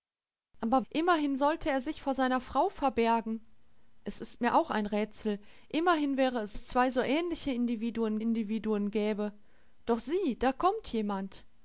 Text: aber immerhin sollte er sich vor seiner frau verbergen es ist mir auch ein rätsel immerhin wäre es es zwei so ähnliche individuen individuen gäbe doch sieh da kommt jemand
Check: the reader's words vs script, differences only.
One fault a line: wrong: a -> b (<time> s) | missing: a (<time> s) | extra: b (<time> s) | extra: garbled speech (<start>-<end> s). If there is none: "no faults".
no faults